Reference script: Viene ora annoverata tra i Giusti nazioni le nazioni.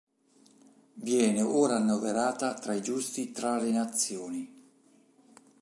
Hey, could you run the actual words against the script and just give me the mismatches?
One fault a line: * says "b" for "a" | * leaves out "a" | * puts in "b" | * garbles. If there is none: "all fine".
* says "tra" for "nazioni"